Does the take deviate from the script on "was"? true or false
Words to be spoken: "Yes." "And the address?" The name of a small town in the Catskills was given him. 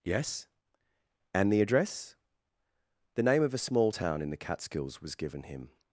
false